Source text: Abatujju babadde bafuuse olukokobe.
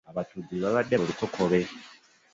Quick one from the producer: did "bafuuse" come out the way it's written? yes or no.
no